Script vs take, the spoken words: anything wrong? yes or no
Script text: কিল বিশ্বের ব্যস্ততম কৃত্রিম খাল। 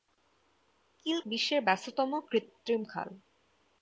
no